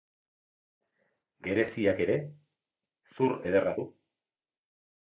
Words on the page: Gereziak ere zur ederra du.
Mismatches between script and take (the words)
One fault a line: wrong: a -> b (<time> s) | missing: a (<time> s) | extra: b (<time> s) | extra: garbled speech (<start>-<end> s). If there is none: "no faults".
no faults